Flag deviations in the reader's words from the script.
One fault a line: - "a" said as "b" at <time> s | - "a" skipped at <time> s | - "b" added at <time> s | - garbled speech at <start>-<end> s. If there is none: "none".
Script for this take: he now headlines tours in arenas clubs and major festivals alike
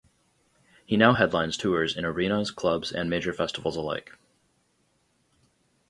none